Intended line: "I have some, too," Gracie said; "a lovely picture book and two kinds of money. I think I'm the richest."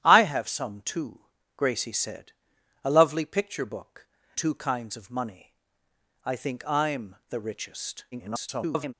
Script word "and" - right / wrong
wrong